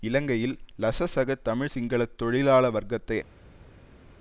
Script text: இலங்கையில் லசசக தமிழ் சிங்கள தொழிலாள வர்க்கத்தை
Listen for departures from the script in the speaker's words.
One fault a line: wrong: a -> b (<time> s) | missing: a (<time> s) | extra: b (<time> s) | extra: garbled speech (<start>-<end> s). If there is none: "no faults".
no faults